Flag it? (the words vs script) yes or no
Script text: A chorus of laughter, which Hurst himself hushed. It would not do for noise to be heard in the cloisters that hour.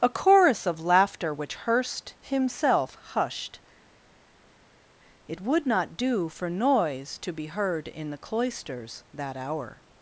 no